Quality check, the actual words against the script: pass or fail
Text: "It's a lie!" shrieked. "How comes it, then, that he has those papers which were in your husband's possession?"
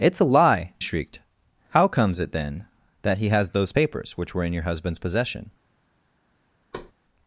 pass